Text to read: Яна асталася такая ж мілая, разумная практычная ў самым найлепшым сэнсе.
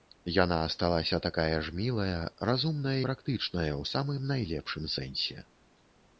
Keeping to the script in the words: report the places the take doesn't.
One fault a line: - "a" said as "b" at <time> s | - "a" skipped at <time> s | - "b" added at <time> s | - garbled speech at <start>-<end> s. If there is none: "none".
none